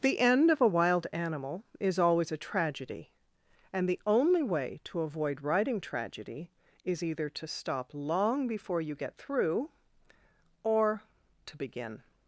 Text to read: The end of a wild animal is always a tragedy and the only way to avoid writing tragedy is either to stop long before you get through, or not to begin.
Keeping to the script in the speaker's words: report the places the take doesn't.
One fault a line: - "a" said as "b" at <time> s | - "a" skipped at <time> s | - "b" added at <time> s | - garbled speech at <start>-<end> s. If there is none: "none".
- "not" skipped at 11.0 s